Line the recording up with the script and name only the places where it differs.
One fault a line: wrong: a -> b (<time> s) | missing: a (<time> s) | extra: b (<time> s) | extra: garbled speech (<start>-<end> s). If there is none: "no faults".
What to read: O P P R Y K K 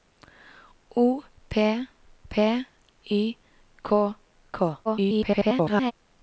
missing: R (2.6 s)
extra: garbled speech (4.8-5.9 s)